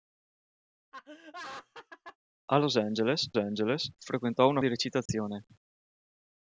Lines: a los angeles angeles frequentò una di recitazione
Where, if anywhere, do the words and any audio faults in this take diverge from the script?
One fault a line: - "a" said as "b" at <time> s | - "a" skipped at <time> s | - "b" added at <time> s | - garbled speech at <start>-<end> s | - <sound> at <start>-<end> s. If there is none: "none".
- laugh at 0.9-2.2 s
- dropout at 5.1-5.1 s